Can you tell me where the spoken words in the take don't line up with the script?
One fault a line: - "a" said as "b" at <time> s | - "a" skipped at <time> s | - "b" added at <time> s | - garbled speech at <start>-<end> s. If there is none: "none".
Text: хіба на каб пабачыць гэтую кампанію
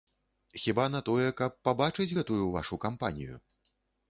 - "тое" added at 1.1 s
- "вашу" added at 2.5 s